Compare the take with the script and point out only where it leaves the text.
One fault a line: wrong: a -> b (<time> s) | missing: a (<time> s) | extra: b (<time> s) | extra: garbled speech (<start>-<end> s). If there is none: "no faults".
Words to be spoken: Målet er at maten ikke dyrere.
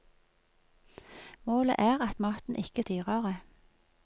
no faults